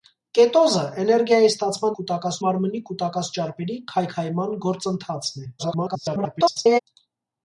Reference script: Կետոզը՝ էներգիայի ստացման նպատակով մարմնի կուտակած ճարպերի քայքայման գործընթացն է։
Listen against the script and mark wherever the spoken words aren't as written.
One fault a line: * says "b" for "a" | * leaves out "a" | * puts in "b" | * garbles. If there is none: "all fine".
* says "կուտակած" for "նպատակով"
* garbles